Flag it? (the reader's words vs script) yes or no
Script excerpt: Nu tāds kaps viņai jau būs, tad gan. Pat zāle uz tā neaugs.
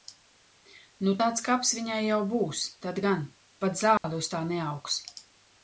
no